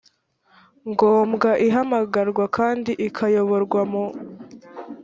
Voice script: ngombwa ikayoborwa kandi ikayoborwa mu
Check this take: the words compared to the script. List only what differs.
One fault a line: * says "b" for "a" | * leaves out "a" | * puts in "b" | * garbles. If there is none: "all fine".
* says "ihamagarwa" for "ikayoborwa"